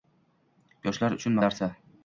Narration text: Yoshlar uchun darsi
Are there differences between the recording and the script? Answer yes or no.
no